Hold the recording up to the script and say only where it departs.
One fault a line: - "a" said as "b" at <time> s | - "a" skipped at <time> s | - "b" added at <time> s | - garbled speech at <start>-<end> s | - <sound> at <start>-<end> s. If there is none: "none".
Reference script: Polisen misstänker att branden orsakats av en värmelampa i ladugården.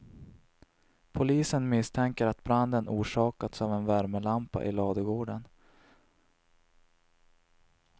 none